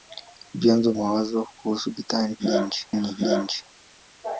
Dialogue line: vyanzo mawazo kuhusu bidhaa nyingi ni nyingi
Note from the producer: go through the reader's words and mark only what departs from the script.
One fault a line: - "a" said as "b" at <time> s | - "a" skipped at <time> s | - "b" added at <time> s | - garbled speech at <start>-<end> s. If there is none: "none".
none